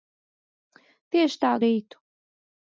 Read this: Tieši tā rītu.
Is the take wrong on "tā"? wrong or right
right